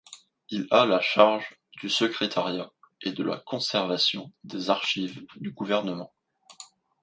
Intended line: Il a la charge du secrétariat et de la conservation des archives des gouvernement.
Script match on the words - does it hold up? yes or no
no